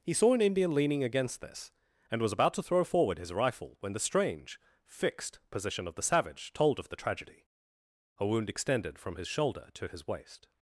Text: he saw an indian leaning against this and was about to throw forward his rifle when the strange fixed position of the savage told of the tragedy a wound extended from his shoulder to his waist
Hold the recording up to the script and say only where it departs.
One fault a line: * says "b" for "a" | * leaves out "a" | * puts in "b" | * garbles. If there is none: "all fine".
all fine